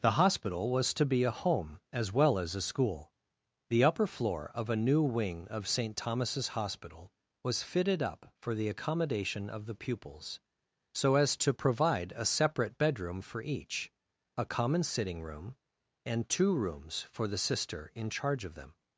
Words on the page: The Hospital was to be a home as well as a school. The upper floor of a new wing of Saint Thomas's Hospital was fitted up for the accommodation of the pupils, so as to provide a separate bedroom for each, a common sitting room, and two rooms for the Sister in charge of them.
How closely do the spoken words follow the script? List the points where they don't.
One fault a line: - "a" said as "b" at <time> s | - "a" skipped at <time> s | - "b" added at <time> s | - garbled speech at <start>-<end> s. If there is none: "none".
none